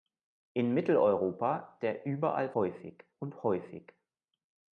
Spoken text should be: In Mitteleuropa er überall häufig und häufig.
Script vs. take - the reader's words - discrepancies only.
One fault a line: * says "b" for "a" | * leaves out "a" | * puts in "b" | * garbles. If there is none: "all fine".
all fine